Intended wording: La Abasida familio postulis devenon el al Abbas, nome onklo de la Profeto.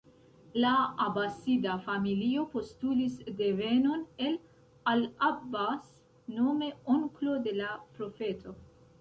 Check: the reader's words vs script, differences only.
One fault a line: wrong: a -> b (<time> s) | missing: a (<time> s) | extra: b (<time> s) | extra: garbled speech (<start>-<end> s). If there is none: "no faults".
no faults